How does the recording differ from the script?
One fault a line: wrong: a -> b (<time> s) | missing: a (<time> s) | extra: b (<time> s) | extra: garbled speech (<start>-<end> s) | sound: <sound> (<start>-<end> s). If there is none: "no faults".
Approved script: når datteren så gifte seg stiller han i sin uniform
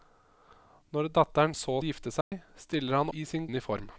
sound: dropout (2.2-2.3 s)